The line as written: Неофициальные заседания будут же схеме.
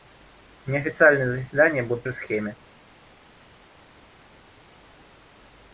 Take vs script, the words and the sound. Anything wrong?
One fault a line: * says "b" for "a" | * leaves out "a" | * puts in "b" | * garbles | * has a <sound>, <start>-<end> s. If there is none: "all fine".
all fine